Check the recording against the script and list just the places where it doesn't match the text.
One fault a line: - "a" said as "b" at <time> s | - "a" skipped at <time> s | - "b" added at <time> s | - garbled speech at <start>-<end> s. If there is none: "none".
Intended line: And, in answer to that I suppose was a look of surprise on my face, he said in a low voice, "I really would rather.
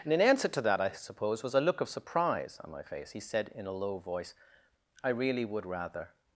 none